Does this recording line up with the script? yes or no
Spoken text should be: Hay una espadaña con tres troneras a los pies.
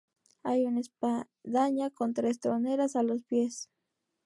yes